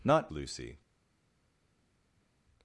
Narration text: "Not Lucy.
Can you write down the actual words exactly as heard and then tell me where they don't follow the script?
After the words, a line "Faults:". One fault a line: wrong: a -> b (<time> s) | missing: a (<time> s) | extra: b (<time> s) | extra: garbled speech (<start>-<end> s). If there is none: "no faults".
"Not Lucy.
Faults:
no faults